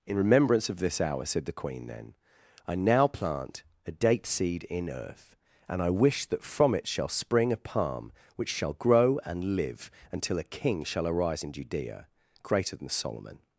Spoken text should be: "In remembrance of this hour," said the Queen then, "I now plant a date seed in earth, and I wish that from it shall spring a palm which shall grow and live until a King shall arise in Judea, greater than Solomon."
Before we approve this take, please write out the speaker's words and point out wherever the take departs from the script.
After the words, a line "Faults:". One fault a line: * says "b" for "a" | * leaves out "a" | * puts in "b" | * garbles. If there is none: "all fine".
"In remembrance of this hour," said the Queen then, "I now plant a date seed in earth, and I wish that from it shall spring a palm which shall grow and live until a King shall arise in Judea, greater than Solomon."
Faults:
all fine